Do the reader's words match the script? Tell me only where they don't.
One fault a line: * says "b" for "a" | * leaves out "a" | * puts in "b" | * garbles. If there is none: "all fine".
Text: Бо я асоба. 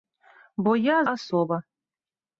all fine